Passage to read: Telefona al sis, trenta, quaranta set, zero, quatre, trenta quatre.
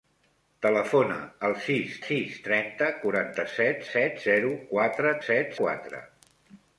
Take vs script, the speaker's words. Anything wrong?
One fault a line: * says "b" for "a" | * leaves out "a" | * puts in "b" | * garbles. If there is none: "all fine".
* puts in "sis"
* puts in "set"
* says "set" for "trenta"